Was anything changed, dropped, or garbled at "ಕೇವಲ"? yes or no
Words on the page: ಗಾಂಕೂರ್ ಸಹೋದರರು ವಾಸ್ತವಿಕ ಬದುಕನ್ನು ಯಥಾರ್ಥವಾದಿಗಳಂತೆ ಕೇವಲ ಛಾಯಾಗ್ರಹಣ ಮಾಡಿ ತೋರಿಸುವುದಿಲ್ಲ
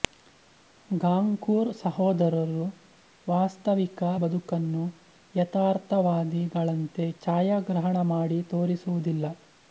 yes